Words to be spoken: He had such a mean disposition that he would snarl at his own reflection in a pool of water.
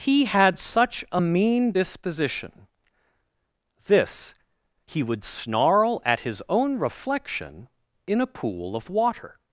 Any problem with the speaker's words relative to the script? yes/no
yes